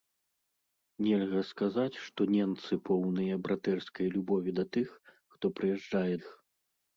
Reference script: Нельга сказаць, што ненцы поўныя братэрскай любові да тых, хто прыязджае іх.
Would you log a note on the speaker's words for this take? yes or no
no